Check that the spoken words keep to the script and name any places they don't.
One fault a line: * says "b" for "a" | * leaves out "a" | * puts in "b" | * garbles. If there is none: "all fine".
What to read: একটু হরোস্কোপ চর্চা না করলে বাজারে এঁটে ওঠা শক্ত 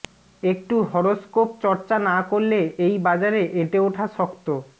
* puts in "এই"